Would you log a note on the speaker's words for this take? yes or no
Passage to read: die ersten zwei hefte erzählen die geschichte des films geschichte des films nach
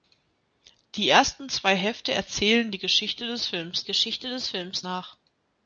no